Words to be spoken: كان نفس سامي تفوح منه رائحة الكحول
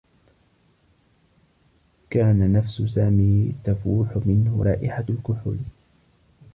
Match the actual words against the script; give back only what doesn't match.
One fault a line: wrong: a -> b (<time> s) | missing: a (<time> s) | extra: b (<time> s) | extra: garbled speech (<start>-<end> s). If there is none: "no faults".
no faults